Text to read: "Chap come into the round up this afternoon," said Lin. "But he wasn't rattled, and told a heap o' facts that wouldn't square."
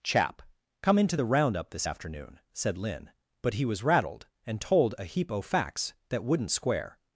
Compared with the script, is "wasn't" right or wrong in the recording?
wrong